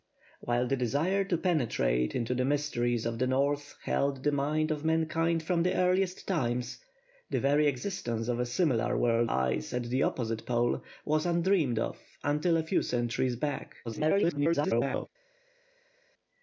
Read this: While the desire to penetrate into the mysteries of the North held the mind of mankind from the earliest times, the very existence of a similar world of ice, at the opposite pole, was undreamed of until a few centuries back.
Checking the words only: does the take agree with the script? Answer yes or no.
no